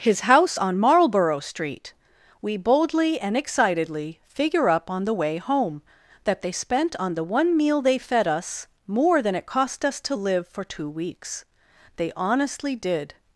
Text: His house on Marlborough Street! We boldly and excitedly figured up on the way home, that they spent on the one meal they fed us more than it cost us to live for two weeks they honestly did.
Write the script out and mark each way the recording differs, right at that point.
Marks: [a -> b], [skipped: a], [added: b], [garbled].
His house on Marlborough Street! We boldly and excitedly [figured -> figure] up on the way home, that they spent on the one meal they fed us more than it cost us to live for two weeks they honestly did.